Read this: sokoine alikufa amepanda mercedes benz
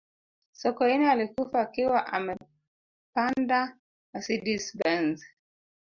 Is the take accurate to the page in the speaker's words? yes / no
no